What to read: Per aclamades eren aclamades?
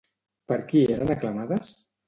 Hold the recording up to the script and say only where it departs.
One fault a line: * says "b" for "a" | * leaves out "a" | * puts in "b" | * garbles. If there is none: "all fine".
* says "qui" for "aclamades"